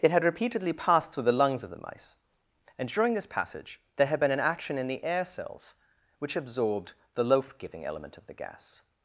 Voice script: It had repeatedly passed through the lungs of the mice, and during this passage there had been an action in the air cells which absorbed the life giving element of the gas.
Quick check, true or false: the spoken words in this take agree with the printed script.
false